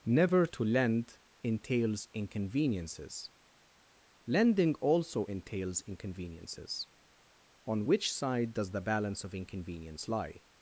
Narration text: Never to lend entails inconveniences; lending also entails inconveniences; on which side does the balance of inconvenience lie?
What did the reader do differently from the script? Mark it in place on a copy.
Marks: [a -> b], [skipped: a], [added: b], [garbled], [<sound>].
Never to lend entails inconveniences; lending also entails inconveniences; on which side does the balance of inconvenience lie?